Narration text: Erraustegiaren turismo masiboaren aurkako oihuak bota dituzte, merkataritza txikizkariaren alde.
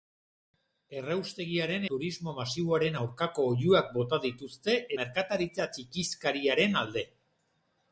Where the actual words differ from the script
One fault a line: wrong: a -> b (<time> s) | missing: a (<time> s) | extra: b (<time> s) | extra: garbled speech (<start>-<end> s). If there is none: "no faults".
no faults